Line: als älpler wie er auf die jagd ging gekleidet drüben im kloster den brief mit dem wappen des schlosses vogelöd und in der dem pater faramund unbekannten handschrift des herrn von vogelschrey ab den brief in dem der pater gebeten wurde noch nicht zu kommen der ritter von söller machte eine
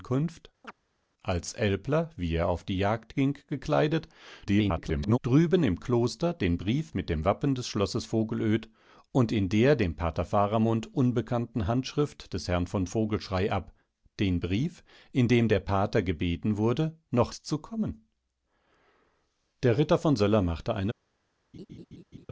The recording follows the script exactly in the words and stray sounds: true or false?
false